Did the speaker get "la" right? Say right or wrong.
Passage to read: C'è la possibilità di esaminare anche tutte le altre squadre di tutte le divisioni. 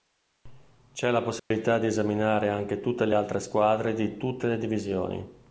right